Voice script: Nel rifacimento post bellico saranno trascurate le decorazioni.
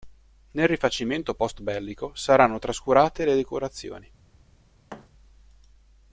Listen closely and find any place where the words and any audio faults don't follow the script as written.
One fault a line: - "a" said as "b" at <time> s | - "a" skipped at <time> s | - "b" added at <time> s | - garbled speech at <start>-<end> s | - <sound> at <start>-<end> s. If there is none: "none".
- thud at 4.9-5.1 s